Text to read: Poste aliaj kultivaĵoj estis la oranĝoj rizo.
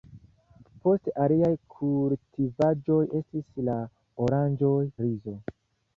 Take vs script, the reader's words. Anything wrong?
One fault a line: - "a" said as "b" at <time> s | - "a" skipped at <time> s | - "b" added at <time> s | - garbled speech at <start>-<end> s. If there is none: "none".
none